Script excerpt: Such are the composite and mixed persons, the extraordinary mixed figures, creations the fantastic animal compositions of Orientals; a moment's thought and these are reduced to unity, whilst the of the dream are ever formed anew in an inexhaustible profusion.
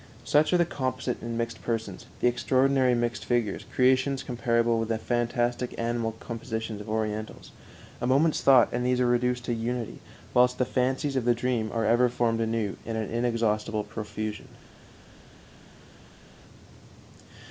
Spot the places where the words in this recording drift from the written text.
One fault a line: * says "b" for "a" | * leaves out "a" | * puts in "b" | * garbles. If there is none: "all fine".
* puts in "comparable with"
* puts in "fancies"